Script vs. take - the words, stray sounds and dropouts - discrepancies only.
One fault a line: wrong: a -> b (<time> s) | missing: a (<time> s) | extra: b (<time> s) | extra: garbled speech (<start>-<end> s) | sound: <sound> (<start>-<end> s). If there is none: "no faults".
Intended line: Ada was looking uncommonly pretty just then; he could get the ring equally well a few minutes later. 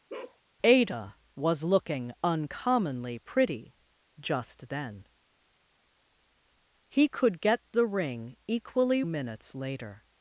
sound: bark (0.1-0.4 s)
missing: well a few (9.0 s)